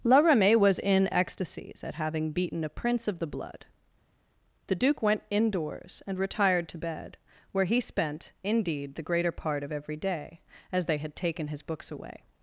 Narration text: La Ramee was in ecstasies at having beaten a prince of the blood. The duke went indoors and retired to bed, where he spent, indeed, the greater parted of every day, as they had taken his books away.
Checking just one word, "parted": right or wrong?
wrong